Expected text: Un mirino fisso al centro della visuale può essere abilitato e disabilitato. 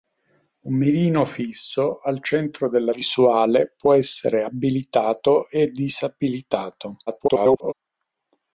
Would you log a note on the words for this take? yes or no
yes